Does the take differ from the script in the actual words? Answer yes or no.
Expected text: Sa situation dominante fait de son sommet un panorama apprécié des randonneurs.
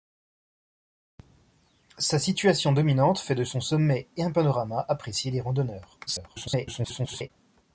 yes